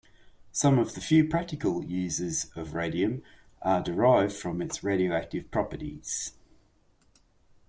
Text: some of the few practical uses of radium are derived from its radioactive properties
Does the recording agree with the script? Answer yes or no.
yes